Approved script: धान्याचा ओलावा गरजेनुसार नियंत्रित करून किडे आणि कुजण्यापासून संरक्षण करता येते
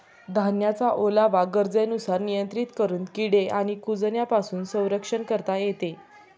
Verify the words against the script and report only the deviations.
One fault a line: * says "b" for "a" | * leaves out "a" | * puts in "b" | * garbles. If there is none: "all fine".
all fine